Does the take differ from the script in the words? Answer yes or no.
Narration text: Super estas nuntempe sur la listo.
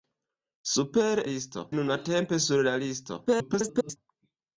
yes